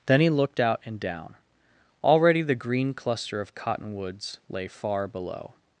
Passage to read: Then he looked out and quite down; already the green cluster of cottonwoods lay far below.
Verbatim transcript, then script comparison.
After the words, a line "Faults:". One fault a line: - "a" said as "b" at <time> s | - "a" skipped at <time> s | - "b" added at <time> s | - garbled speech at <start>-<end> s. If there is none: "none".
Then he looked out and down; already the green cluster of cottonwoods lay far below.
Faults:
- "quite" skipped at 1.0 s